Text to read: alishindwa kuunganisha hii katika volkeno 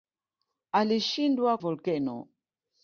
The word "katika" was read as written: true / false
false